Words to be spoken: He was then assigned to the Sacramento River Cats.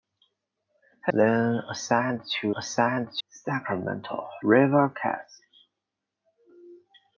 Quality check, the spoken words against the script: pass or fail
fail